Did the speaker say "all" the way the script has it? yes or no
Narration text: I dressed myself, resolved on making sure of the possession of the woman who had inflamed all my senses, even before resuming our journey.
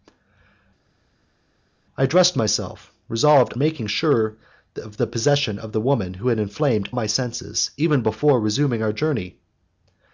no